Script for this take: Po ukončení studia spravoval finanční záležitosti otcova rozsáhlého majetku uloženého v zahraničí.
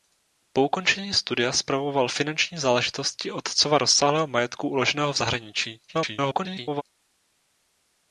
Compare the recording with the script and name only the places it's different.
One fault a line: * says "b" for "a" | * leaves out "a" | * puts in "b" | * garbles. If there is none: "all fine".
* garbles